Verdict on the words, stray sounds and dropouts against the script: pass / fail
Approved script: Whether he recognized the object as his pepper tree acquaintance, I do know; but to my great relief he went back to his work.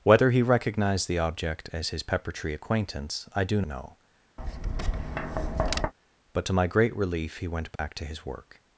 fail